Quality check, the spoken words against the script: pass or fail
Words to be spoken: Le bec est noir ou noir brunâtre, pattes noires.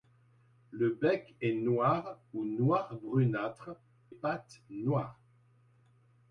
pass